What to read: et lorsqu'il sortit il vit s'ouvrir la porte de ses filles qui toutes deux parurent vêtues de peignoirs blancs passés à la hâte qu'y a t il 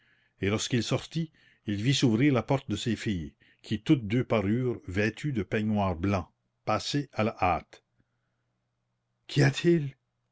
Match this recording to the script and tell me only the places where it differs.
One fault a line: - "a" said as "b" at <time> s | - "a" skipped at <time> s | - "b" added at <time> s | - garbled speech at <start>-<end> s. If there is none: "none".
none